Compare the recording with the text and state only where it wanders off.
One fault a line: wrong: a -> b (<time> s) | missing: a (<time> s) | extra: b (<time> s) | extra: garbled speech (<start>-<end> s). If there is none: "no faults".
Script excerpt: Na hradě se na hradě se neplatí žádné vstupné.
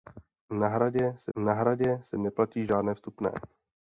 no faults